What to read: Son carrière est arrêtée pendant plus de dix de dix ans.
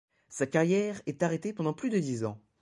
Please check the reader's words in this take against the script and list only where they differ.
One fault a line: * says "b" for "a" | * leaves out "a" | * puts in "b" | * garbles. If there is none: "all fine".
* says "Sa" for "Son"
* leaves out "de dix"